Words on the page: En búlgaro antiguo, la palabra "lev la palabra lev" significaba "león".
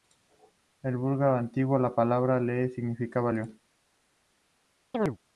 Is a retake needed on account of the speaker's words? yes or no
yes